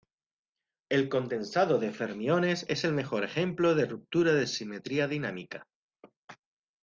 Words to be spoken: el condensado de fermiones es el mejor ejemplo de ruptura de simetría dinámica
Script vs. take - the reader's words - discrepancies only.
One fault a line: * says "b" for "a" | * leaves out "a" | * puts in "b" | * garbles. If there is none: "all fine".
all fine